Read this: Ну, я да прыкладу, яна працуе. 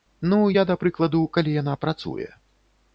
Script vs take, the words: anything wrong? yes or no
yes